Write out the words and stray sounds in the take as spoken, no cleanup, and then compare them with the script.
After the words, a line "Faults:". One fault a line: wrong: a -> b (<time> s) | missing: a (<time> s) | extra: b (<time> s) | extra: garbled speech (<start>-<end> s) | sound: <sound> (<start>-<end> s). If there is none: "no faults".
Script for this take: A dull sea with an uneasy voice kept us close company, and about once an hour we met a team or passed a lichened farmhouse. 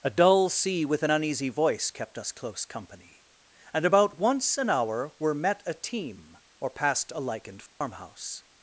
A dull sea with an uneasy voice kept us close company, and about once an hour were met a team or passed a lichened farmhouse.
Faults:
wrong: we -> were (5.2 s)
sound: dropout (7.7-7.8 s)